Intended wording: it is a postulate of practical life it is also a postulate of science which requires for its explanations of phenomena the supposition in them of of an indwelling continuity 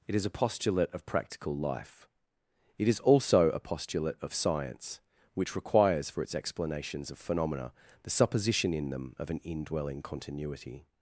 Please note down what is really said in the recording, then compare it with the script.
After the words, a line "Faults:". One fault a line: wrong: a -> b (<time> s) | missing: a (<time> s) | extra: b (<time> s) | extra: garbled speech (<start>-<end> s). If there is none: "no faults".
it is a postulate of practical life it is also a postulate of science which requires for its explanations of phenomena the supposition in them of an indwelling continuity
Faults:
missing: of (9.3 s)